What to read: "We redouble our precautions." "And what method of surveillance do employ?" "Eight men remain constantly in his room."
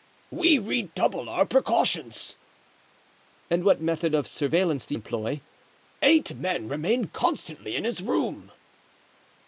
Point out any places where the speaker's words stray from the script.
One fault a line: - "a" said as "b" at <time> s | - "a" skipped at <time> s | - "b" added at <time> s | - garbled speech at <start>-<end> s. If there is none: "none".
none